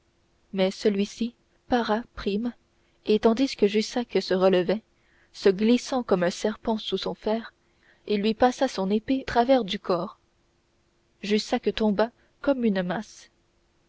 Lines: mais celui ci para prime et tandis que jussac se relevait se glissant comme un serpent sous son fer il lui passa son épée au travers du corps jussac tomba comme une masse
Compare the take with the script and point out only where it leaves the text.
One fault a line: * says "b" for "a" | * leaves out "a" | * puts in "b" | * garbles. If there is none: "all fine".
* leaves out "au"